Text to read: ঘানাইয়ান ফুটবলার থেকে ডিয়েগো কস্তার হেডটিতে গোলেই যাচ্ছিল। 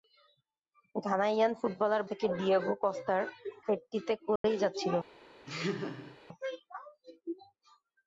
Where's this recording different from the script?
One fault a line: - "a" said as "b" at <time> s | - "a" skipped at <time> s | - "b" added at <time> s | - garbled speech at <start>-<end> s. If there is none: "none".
none